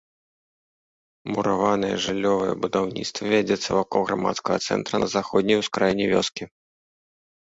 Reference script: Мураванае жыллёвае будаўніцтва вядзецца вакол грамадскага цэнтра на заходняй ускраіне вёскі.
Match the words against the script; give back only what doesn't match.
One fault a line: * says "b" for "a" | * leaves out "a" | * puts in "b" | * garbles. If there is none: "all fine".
all fine